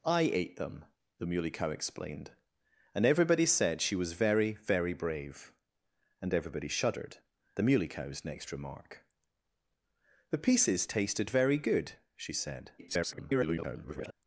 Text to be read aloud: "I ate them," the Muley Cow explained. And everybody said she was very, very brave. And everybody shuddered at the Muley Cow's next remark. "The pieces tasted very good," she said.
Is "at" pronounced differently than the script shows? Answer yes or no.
yes